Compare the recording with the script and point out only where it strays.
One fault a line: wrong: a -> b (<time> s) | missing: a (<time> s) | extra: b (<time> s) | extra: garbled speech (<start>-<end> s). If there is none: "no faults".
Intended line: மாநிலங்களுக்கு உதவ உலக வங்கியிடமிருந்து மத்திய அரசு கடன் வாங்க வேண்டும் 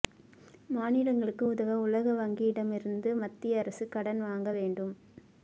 no faults